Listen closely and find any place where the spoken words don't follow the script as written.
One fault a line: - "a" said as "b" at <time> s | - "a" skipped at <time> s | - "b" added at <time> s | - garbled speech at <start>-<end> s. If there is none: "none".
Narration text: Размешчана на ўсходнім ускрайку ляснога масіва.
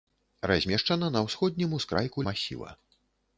- "ляснога" skipped at 2.2 s